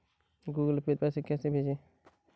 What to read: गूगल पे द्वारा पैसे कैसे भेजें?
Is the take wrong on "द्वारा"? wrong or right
wrong